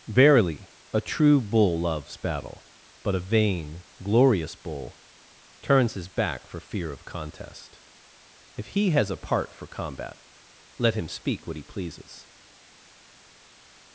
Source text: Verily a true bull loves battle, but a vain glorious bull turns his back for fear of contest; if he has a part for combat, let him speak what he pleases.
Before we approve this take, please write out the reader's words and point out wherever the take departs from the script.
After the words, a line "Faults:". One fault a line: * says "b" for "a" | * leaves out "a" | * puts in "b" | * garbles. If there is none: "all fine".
Verily a true bull loves battle, but a vain glorious bull turns his back for fear of contest; if he has a part for combat, let him speak what he pleases.
Faults:
all fine